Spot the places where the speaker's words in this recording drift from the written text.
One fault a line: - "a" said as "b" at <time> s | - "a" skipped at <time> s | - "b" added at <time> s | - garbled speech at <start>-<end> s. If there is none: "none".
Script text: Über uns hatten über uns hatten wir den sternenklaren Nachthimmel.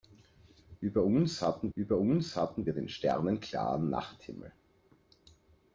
none